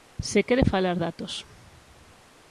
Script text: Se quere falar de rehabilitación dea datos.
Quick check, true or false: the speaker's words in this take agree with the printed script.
false